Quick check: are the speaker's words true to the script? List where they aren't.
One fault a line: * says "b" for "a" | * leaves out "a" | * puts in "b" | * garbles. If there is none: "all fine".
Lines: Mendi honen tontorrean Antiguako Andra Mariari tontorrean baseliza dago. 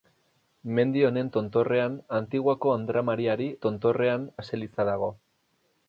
all fine